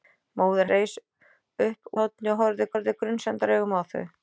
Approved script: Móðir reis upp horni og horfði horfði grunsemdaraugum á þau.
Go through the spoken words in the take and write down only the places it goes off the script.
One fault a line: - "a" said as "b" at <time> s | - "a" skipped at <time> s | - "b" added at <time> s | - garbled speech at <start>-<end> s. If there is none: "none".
none